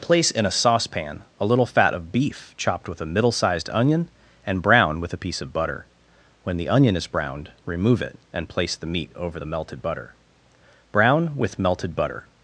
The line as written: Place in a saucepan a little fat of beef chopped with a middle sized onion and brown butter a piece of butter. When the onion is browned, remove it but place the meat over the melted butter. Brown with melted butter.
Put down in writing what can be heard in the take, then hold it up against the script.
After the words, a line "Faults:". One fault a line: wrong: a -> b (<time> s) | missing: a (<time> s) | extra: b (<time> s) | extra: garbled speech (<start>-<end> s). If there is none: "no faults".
Place in a saucepan a little fat of beef chopped with a middle sized onion and brown with a piece of butter. When the onion is browned, remove it and place the meat over the melted butter. Brown with melted butter.
Faults:
wrong: butter -> with (5.0 s)
wrong: but -> and (8.3 s)